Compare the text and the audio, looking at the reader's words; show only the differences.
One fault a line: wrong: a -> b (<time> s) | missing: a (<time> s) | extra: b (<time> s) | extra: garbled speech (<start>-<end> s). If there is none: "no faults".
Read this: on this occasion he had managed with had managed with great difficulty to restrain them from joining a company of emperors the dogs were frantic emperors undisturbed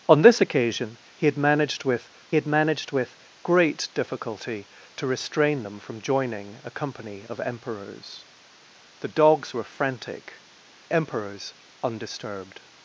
no faults